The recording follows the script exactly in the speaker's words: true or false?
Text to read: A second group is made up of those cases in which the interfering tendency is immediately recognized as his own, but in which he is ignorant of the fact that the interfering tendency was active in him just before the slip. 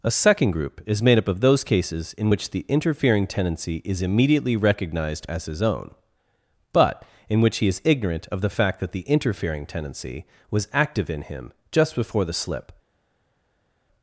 true